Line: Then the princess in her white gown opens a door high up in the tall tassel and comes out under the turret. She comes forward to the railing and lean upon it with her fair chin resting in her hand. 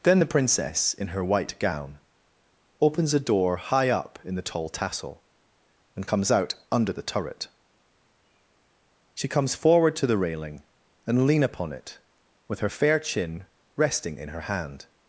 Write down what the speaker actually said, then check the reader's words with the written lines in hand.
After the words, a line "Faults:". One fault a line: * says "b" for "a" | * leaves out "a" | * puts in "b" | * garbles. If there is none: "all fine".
Then the princess in her white gown opens a door high up in the tall tassel and comes out under the turret. She comes forward to the railing and lean upon it with her fair chin resting in her hand.
Faults:
all fine